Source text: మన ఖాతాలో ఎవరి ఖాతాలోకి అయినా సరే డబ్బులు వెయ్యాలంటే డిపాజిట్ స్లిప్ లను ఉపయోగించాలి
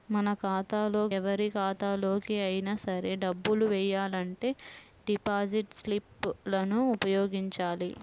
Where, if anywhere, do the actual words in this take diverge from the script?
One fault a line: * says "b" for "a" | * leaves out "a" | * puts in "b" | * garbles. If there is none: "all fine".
all fine